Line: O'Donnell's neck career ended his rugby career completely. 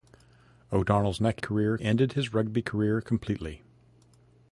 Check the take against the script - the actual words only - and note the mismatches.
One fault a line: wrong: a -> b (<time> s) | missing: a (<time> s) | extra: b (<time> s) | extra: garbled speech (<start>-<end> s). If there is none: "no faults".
no faults